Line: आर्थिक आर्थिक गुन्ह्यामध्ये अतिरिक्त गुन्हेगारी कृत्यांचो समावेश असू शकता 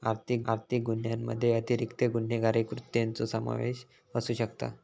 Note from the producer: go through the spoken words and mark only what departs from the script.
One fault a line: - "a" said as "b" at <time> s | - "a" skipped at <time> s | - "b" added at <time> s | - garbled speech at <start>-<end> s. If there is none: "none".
none